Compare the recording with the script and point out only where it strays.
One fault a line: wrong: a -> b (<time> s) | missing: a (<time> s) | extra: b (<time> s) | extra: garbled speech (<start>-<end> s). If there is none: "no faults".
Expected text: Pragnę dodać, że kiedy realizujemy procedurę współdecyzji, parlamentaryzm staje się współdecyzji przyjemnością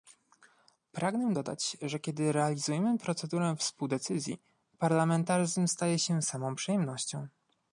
wrong: współdecyzji -> samą (6.2 s)